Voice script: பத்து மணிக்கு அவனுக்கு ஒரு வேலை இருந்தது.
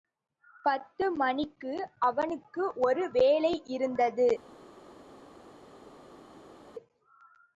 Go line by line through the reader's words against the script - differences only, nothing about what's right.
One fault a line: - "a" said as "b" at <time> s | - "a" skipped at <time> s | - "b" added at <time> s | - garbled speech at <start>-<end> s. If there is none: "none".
none